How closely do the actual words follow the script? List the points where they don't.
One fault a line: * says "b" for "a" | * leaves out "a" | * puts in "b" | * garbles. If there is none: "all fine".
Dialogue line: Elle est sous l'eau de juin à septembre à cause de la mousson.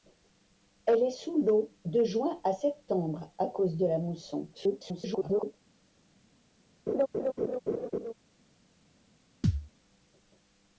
* garbles